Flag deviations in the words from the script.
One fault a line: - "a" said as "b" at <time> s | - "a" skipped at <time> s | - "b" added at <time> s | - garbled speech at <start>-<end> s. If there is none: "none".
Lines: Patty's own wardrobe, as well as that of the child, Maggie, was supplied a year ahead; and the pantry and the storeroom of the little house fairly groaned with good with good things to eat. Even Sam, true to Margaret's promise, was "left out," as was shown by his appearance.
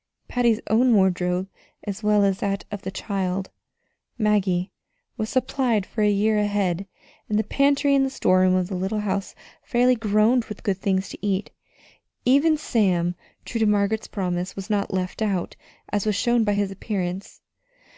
- "for" added at 5.8 s
- "with good" skipped at 10.8 s
- "not" added at 14.7 s